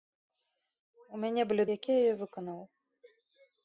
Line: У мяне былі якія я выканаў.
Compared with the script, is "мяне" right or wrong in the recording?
right